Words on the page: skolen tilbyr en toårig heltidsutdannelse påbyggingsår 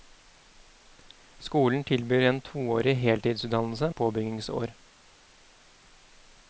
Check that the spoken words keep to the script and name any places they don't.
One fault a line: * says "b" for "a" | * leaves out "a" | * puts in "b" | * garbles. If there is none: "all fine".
all fine